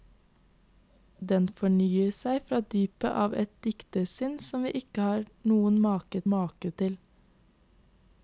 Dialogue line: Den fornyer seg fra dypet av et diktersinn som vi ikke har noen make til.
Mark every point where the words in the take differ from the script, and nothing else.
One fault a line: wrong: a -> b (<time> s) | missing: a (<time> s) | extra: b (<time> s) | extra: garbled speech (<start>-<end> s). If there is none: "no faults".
extra: make (6.3 s)